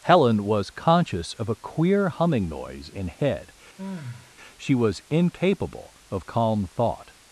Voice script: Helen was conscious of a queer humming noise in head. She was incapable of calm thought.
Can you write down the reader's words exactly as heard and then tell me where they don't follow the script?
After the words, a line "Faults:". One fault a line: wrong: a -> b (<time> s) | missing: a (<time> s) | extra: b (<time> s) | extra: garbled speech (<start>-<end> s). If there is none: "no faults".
Helen was conscious of a queer humming noise in head. She was incapable of calm thought.
Faults:
no faults